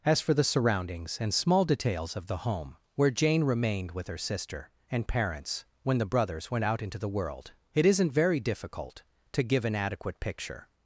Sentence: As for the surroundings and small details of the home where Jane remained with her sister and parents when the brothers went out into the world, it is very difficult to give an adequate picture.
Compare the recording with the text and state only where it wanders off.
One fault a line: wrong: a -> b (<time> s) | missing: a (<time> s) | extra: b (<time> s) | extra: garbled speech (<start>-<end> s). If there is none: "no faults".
wrong: is -> isn't (7.8 s)